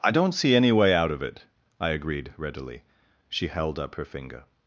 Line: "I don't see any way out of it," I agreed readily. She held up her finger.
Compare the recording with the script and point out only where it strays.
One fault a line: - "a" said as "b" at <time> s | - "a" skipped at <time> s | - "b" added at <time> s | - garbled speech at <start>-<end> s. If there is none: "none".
none